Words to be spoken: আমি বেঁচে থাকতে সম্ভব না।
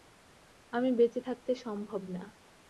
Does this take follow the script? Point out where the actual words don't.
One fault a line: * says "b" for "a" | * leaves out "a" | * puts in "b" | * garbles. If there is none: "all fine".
all fine